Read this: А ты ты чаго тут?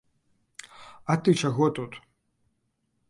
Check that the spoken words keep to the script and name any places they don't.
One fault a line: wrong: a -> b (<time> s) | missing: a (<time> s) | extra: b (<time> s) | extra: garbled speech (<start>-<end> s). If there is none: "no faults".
missing: ты (1.3 s)